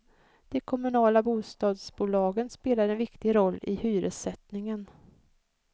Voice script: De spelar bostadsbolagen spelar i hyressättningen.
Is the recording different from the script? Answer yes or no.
yes